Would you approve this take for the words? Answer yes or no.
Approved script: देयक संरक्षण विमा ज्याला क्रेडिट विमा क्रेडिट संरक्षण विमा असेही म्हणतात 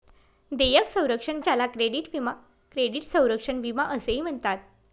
no